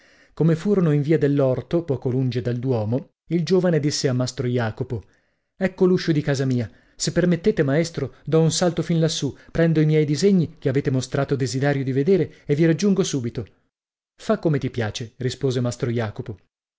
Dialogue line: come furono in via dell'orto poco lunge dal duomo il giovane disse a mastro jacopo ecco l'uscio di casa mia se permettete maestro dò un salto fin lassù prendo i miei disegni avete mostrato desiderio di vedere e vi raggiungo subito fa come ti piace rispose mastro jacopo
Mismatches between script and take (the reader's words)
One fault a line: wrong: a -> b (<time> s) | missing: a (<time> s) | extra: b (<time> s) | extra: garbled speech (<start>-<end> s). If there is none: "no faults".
extra: che (10.6 s)